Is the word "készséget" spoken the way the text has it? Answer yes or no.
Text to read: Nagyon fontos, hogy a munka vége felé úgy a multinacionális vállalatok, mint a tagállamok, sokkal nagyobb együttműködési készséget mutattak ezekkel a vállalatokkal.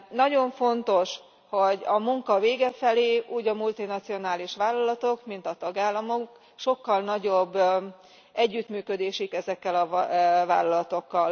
no